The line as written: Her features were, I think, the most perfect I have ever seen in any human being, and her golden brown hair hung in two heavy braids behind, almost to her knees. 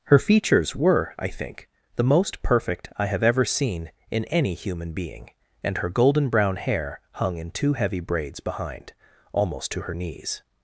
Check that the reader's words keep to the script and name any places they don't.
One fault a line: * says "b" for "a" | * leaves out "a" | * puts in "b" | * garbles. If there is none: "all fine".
all fine